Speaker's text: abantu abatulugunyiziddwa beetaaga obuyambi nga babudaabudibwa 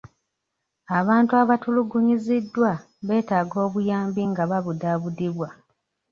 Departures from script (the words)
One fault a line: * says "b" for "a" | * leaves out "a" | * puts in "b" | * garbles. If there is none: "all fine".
all fine